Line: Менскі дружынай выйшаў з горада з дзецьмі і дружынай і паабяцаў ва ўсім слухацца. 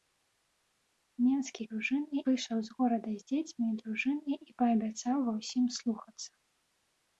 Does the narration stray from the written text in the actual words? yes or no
no